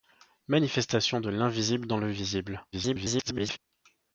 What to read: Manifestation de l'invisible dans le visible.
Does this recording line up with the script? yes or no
no